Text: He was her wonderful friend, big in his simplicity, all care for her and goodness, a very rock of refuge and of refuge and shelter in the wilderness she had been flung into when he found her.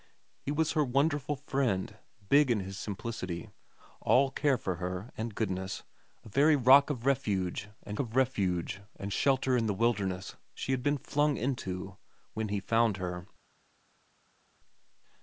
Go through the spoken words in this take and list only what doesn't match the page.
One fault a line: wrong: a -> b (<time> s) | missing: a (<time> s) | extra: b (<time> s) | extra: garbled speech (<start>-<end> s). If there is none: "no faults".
no faults